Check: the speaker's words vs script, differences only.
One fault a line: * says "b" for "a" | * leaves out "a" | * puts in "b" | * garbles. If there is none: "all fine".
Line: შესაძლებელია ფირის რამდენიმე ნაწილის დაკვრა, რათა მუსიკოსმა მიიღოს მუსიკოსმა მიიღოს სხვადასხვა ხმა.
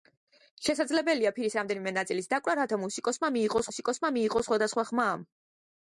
all fine